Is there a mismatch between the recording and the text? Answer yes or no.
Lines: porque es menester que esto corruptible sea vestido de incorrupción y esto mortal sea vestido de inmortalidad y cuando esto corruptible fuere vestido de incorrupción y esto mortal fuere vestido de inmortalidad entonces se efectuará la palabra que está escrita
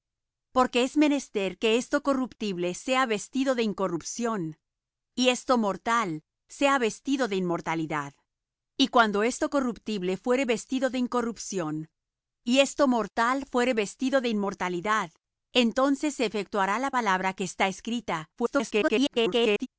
yes